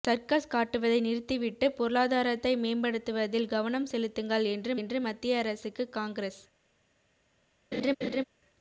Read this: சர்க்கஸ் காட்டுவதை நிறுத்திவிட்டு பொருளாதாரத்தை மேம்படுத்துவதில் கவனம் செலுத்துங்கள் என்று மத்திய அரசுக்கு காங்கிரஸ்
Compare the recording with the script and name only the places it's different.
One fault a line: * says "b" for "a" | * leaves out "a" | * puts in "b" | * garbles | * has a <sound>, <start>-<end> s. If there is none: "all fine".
* puts in "என்று"
* has a laugh, 7.7-8.2 s